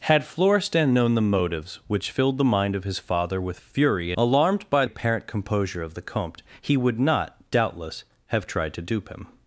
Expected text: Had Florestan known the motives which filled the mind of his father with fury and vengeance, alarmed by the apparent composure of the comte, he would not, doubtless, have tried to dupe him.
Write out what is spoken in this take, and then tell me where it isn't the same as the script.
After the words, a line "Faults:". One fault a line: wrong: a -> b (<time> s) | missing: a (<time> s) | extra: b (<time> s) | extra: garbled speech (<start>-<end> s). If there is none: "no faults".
Had Florestan known the motives which filled the mind of his father with fury alarmed by apparent composure of the comte, he would not, doubtless, have tried to dupe him.
Faults:
missing: and vengeance (4.1 s)
missing: the (4.8 s)